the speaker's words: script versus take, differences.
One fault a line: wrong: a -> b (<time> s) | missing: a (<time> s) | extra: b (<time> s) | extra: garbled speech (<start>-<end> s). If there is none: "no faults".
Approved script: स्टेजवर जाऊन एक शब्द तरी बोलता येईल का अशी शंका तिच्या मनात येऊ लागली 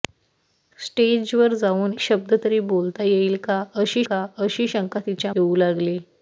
missing: एक (1.9 s)
extra: का अशी (4.1 s)
missing: मनात (5.3 s)